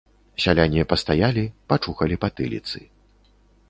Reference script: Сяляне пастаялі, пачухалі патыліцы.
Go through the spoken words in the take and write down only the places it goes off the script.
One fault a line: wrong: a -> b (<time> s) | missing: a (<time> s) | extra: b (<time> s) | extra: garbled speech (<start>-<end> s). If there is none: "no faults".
no faults